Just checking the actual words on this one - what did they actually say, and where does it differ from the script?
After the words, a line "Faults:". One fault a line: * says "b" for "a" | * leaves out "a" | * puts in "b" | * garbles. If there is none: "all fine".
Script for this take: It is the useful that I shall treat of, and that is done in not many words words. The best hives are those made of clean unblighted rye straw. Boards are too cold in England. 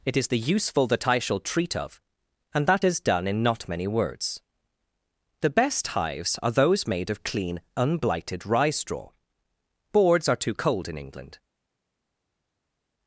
It is the useful that I shall treat of, and that is done in not many words. The best hives are those made of clean unblighted rye straw. Boards are too cold in England.
Faults:
* leaves out "words"